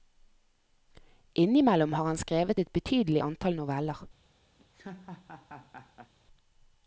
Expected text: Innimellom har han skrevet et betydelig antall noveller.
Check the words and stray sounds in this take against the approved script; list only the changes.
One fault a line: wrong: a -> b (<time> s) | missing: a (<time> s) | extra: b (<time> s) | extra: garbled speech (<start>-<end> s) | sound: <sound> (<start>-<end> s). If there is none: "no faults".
sound: laugh (4.6-6.1 s)